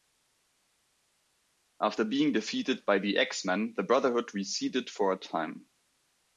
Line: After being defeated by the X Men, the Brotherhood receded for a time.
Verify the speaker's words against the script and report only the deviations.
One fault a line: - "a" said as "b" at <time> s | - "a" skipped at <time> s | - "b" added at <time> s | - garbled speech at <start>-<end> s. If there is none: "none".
none